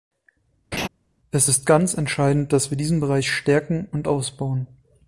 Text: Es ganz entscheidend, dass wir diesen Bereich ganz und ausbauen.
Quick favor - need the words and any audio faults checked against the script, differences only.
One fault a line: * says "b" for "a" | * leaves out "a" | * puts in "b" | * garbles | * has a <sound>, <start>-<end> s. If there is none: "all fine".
* has a laugh, 0.7-0.9 s
* puts in "ist"
* says "stärken" for "ganz"